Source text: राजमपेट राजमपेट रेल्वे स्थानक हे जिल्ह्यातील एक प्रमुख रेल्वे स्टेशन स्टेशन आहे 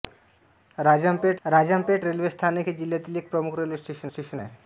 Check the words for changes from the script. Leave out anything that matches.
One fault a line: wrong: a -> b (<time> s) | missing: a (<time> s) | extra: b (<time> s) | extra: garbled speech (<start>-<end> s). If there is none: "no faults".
no faults